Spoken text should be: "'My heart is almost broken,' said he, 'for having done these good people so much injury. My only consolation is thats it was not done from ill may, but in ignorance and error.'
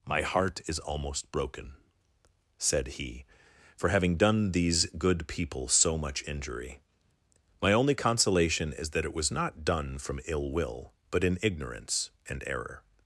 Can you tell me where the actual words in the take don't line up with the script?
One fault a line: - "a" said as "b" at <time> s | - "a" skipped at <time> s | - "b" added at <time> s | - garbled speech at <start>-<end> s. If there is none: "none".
- "thats" said as "that" at 8.9 s
- "may" said as "will" at 10.5 s